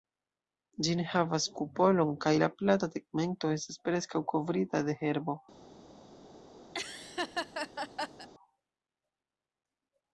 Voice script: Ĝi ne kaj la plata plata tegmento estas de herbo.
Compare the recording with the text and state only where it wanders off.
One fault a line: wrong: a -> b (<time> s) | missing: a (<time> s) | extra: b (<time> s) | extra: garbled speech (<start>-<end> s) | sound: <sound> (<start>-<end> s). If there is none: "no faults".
extra: havas kupolon (1.1 s)
missing: plata (2.9 s)
extra: preskaŭ kovrita (3.9 s)
sound: laugh (6.7-8.3 s)